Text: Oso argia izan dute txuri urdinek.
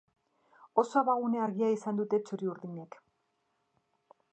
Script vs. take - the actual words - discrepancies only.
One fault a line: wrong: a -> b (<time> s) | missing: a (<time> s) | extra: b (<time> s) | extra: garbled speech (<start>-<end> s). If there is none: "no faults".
extra: abagune (1.0 s)